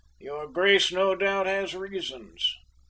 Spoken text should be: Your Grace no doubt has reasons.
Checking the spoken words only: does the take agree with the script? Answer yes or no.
yes